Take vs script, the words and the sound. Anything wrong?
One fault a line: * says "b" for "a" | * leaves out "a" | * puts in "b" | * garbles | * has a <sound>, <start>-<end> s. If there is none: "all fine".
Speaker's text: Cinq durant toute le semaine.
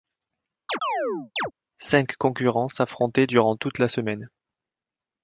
* has a chirp, 0.7-1.5 s
* puts in "concurrents s'affrontaient"
* says "la" for "le"